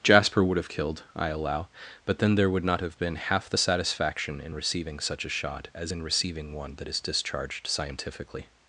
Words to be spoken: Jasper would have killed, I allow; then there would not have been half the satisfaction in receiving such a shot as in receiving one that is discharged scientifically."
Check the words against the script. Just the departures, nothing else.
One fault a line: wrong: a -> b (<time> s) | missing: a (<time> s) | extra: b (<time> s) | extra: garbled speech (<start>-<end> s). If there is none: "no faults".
extra: but (2.0 s)